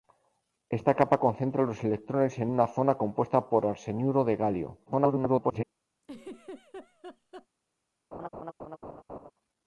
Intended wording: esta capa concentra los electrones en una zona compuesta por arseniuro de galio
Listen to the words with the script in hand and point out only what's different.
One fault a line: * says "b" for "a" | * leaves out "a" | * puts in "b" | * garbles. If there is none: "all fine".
* garbles